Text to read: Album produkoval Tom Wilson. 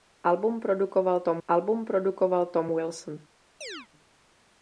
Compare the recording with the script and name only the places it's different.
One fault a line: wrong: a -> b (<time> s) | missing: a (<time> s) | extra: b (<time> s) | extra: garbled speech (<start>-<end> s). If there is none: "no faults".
extra: album produkoval Tom (1.5 s)